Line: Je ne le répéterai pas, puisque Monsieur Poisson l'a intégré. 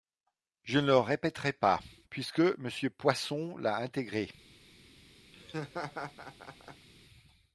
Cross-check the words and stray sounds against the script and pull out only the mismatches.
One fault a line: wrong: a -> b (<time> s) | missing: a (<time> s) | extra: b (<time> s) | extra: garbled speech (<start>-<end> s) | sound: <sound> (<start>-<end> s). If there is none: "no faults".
sound: laugh (5.3-6.9 s)